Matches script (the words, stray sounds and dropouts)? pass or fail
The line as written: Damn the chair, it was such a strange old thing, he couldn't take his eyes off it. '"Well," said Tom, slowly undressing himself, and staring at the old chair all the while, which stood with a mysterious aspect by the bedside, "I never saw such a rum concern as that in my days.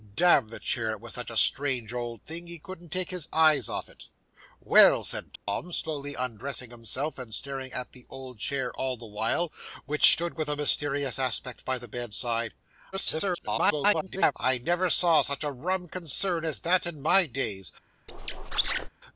fail